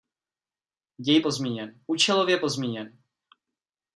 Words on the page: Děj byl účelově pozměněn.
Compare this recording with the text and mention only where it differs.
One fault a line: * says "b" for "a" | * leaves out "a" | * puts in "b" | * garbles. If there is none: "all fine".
* says "pozměněn" for "byl"